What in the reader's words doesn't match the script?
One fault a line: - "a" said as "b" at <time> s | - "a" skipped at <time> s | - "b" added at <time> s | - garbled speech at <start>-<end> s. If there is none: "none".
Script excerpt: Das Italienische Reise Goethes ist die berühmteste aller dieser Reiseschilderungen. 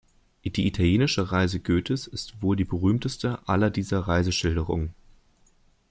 - "Das" said as "Die" at 0.4 s
- "wohl" added at 2.4 s